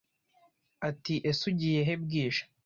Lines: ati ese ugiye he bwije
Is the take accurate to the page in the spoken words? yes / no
yes